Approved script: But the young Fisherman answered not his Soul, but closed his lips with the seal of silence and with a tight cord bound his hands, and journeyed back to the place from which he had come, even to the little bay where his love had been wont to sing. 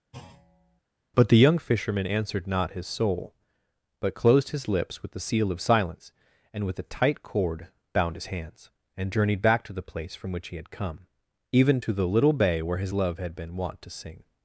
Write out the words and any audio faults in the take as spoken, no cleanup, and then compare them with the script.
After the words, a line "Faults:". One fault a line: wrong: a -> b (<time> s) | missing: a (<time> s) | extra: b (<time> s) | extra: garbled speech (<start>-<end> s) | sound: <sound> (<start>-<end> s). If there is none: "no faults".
But the young Fisherman answered not his Soul, but closed his lips with the seal of silence and with a tight cord bound his hands, and journeyed back to the place from which he had come, even to the little bay where his love had been wont to sing.
Faults:
sound: thud (0.1-0.8 s)